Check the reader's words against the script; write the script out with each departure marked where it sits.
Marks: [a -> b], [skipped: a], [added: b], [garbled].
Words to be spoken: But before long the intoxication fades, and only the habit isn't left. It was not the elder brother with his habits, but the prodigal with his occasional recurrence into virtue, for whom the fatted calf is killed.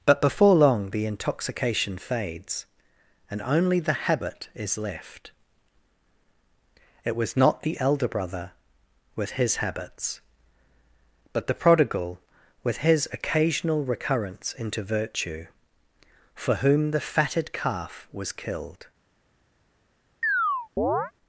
But before long the intoxication fades, and only the habit [isn't -> is] left. It was not the elder brother with his habits, but the prodigal with his occasional recurrence into virtue, for whom the fatted calf [is -> was] killed.